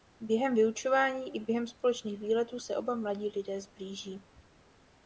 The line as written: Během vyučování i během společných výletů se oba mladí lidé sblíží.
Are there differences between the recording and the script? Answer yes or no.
no